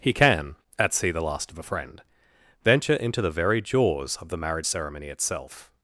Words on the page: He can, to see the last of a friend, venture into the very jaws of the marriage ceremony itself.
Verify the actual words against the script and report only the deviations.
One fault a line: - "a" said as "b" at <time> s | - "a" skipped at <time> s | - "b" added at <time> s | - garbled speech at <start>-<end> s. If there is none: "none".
- "to" said as "at" at 0.8 s